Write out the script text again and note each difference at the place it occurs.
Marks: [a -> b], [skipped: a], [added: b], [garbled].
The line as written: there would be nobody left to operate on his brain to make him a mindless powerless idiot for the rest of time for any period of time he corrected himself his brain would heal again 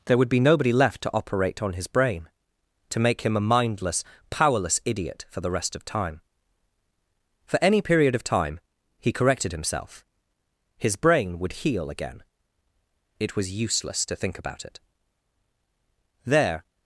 there would be nobody left to operate on his brain to make him a mindless powerless idiot for the rest of time for any period of time he corrected himself his brain would heal again [added: it was useless to think about it there]